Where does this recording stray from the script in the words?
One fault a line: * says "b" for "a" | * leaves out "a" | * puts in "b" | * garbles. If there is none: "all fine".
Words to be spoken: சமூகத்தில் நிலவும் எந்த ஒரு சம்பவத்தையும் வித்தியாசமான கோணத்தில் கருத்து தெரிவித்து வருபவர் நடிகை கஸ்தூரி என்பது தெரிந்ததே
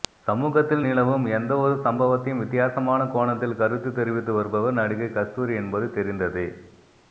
all fine